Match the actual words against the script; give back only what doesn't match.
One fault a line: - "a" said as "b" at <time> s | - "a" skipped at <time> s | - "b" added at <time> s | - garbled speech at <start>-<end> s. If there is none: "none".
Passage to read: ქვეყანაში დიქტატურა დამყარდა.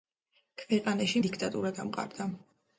none